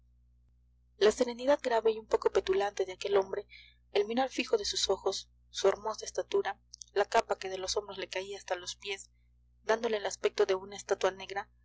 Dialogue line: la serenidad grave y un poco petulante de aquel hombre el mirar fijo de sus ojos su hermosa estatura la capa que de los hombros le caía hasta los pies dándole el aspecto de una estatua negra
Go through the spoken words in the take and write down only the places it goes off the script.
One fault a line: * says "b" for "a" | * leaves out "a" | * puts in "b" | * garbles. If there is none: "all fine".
all fine